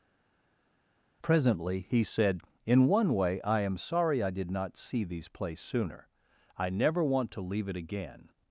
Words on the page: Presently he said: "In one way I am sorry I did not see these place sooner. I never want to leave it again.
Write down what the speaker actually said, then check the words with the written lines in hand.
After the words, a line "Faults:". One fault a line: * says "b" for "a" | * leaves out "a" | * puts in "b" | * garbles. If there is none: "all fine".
Presently he said: "In one way I am sorry I did not see these place sooner. I never want to leave it again.
Faults:
all fine